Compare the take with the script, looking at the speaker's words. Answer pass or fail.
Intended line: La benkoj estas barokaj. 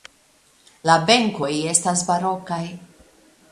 pass